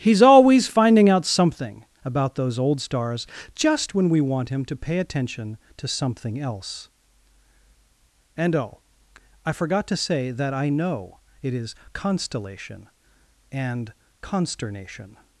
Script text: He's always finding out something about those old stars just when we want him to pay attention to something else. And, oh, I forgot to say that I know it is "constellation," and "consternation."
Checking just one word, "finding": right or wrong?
right